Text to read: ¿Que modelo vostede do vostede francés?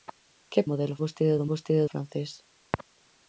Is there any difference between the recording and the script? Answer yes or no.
no